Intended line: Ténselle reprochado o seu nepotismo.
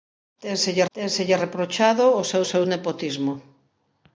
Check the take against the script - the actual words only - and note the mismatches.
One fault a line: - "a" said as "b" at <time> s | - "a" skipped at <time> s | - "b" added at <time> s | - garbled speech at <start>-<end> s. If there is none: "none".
- "ténselle" added at 1.0 s
- "seu" added at 2.5 s